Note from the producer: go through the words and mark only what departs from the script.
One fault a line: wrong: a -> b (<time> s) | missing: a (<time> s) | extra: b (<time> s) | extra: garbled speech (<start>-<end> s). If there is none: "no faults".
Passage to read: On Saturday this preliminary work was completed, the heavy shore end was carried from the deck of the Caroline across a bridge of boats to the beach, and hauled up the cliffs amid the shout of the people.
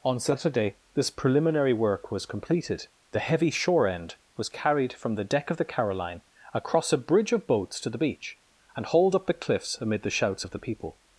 wrong: shout -> shouts (10.1 s)